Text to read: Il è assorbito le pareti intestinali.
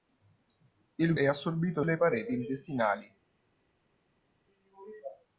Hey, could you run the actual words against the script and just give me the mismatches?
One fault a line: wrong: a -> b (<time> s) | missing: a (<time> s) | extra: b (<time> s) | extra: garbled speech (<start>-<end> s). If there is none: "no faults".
no faults